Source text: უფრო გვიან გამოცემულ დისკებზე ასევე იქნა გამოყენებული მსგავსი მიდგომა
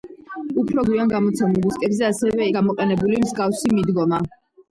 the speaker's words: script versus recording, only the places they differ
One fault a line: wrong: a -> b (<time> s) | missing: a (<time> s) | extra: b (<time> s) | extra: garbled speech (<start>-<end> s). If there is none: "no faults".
missing: იქნა (2.5 s)